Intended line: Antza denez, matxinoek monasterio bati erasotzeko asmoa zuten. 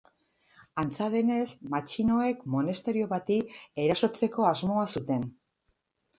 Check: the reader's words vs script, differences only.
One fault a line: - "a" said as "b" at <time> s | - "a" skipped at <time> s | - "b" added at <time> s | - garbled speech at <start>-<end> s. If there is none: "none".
none